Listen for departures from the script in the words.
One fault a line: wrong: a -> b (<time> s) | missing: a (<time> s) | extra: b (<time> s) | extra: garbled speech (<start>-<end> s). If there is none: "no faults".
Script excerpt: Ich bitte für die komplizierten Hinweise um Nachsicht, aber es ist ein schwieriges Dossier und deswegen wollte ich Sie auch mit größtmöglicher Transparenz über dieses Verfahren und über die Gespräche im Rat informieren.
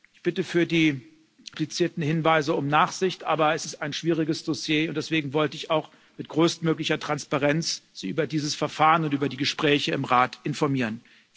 no faults